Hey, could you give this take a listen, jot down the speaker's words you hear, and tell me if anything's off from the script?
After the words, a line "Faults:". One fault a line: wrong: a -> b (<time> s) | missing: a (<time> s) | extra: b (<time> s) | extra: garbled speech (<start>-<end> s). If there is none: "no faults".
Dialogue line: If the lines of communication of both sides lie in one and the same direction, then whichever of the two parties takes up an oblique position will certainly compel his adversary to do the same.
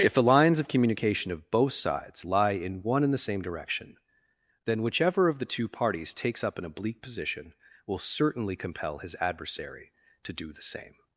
If the lines of communication of both sides lie in one and the same direction, then whichever of the two parties takes up an oblique position will certainly compel his adversary to do the same.
Faults:
no faults